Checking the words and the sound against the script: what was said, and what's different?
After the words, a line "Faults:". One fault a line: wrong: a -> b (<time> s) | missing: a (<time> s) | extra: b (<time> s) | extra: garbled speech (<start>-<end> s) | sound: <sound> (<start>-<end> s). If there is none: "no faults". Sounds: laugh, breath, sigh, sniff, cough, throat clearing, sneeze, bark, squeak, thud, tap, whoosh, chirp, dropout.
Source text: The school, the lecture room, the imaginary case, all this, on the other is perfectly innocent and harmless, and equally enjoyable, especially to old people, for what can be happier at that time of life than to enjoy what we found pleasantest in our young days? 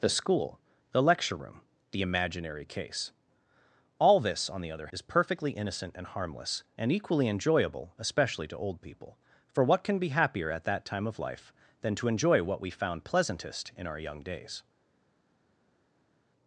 The school, the lecture room, the imaginary case, all this, on the other is perfectly innocent and harmless, and equally enjoyable, especially to old people, for what can be happier at that time of life than to enjoy what we found pleasantest in our young days?
Faults:
no faults